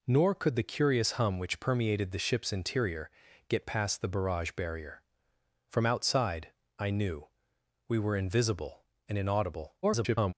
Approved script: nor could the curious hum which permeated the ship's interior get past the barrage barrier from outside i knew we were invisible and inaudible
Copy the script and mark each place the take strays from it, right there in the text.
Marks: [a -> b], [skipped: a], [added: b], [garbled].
nor could the curious hum which permeated the ship's interior get past the barrage barrier from outside i knew we were invisible and inaudible [garbled]